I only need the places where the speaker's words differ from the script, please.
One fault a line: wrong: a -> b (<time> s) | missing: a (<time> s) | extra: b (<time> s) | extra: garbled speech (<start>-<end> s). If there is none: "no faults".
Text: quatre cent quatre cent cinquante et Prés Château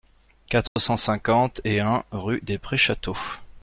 wrong: quatre cent cinquante et -> cinquante et un rue des (1.0 s)